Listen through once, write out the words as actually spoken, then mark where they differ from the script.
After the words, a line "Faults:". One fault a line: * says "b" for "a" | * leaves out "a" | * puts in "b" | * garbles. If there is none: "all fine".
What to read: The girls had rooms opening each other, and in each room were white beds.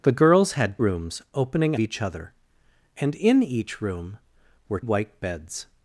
The girls had rooms opening each other, and in each room were white beds.
Faults:
all fine